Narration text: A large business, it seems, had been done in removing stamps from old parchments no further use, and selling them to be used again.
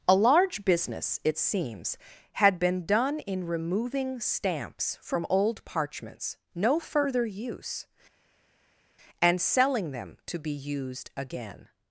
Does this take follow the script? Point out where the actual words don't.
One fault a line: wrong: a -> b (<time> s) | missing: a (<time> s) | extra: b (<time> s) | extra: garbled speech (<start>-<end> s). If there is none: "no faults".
no faults